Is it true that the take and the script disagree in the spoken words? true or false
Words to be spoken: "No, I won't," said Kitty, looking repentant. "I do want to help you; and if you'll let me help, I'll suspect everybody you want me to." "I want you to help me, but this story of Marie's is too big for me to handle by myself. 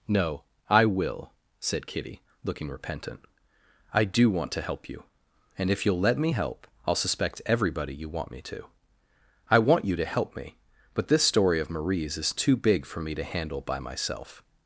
true